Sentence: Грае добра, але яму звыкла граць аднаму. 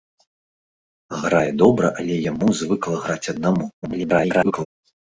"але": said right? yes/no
yes